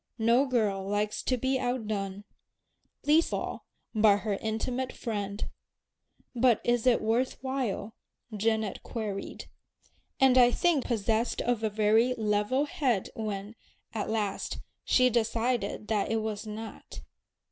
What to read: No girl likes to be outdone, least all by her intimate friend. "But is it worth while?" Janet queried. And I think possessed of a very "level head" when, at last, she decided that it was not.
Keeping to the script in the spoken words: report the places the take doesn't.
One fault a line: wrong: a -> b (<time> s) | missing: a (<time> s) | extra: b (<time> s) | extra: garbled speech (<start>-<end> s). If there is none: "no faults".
no faults